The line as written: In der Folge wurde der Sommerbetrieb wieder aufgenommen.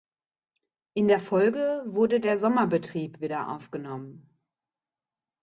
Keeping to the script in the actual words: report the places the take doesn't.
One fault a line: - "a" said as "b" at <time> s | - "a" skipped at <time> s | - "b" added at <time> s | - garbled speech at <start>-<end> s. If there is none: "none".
none